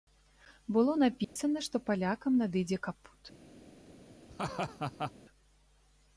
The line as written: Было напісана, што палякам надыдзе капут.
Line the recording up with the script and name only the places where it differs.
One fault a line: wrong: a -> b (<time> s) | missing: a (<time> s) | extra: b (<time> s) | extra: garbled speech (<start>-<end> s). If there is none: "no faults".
no faults